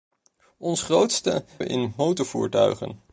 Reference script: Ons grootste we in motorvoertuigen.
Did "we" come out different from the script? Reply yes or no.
no